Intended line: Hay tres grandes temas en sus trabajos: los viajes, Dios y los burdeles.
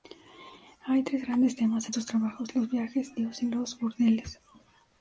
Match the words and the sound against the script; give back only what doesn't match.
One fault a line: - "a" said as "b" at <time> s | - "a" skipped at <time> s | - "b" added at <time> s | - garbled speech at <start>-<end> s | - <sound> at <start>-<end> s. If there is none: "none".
none